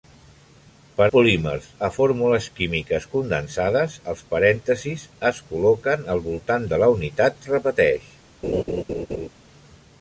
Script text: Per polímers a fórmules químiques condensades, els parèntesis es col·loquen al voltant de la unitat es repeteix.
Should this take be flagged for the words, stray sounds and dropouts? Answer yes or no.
yes